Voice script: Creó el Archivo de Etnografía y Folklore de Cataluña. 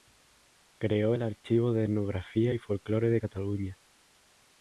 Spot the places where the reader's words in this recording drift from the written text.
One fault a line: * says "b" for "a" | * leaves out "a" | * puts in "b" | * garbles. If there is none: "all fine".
all fine